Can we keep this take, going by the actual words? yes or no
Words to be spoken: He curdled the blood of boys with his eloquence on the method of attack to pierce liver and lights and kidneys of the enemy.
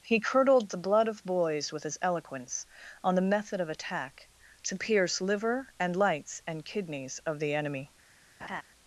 yes